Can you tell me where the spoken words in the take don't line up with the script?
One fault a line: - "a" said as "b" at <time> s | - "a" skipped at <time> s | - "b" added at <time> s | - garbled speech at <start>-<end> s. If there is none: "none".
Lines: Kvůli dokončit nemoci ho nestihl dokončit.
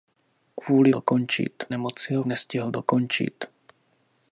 none